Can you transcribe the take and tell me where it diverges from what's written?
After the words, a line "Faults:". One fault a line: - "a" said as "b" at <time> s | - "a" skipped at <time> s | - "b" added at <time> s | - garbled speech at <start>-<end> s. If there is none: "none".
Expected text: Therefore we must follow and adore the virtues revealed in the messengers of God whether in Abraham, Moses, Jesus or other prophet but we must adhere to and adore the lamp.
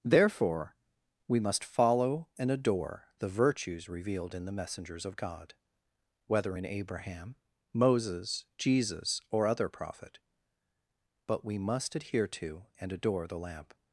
Therefore we must follow and adore the virtues revealed in the messengers of God whether in Abraham, Moses, Jesus or other prophet but we must adhere to and adore the lamp.
Faults:
none